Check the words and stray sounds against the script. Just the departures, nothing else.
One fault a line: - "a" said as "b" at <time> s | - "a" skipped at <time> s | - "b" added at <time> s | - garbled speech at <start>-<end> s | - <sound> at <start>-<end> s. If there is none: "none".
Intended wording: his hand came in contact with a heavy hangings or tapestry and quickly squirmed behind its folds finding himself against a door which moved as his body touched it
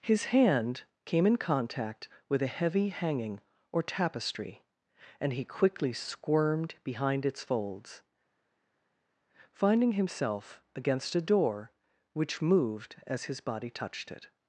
- "hangings" said as "hanging" at 2.9 s
- "he" added at 5.3 s